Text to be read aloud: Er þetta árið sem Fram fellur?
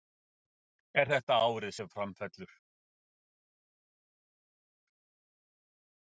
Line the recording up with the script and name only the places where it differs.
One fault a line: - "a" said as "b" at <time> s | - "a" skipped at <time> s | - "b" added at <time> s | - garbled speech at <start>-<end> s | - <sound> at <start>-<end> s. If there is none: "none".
none